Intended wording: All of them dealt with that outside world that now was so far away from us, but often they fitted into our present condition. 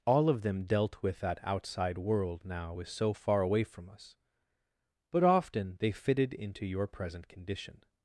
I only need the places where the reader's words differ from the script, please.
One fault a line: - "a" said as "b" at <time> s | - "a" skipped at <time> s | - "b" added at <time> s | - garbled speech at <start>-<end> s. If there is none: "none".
- "that" skipped at 2.4 s
- "our" said as "your" at 6.7 s